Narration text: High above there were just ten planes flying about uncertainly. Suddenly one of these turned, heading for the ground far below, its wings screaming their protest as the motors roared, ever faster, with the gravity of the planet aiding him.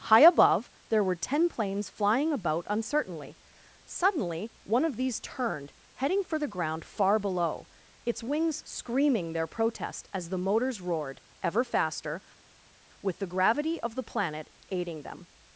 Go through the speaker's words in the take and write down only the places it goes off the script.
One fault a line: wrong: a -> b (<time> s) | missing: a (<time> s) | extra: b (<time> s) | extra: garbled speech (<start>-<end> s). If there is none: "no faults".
missing: just (1.1 s)
wrong: him -> them (15.0 s)